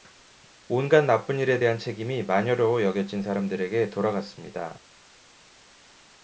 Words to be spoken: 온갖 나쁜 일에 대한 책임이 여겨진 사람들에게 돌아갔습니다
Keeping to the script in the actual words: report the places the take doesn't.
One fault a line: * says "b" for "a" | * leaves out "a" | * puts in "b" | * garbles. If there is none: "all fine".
* puts in "마녀로"